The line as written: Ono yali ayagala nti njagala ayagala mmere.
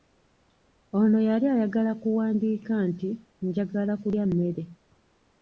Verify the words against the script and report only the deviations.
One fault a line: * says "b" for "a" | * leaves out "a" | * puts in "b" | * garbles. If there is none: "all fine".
* puts in "kuwandiika"
* says "kulya" for "ayagala"